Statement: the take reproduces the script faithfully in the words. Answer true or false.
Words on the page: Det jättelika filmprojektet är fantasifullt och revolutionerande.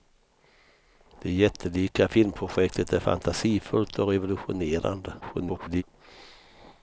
false